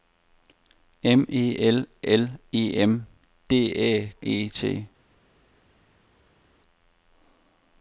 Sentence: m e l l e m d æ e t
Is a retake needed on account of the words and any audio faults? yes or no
no